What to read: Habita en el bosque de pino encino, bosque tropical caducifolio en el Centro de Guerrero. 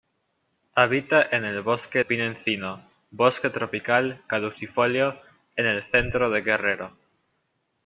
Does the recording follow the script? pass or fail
fail